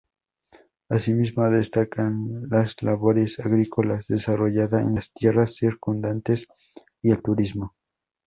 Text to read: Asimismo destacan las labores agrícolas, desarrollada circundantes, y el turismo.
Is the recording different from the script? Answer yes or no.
yes